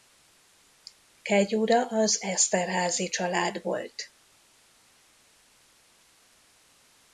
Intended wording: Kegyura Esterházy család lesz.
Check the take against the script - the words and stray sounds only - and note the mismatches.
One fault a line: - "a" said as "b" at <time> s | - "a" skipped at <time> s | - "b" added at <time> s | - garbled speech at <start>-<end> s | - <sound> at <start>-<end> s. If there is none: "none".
- "az" added at 1.9 s
- "lesz" said as "volt" at 3.6 s